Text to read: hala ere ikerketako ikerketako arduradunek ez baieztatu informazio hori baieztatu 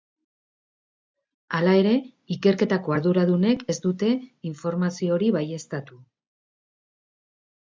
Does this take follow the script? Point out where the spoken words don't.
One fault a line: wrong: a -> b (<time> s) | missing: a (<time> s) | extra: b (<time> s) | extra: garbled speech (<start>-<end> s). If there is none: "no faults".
missing: ikerketako (3.0 s)
wrong: baieztatu -> dute (3.9 s)